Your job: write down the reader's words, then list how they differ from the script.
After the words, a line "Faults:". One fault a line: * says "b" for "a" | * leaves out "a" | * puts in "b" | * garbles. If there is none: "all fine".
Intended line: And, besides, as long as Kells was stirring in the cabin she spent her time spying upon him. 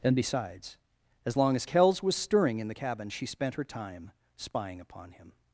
And, besides, as long as Kells was stirring in the cabin she spent her time spying upon him.
Faults:
all fine